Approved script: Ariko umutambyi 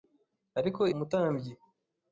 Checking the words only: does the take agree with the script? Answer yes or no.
yes